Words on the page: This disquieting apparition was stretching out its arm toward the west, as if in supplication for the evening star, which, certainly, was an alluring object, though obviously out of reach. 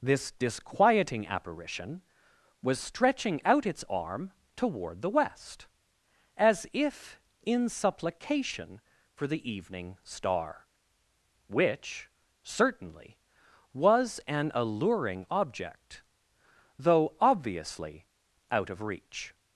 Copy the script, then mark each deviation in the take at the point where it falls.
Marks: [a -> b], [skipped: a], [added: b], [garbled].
This disquieting apparition was stretching out its arm toward the west, as if in supplication for the evening star, which, certainly, was an alluring object, though obviously out of reach.